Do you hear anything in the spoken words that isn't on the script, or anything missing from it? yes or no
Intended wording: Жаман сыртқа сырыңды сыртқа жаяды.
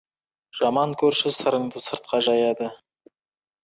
yes